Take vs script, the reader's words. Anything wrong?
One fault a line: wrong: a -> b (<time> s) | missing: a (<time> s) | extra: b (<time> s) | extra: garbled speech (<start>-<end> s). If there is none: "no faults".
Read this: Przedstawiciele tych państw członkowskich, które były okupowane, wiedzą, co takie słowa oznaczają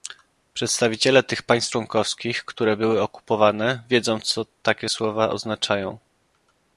no faults